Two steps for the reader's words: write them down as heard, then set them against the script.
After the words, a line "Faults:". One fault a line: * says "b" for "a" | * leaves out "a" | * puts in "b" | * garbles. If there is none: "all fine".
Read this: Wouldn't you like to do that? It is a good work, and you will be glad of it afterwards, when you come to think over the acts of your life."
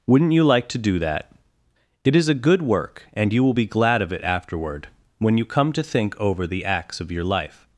Wouldn't you like to do that? It is a good work, and you will be glad of it afterward, when you come to think over the acts of your life."
Faults:
* says "afterward" for "afterwards"